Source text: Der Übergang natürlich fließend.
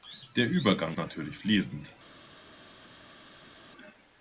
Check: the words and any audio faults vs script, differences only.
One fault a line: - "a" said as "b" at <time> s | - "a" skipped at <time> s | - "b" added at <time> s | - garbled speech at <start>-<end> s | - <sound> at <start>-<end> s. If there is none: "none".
none